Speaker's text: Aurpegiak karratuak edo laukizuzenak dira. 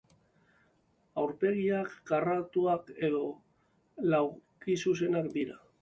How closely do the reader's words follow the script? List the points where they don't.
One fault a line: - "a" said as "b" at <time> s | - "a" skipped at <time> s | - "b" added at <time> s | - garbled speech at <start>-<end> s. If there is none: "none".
none